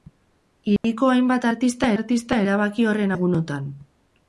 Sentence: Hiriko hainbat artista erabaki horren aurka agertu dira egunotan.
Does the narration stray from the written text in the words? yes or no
yes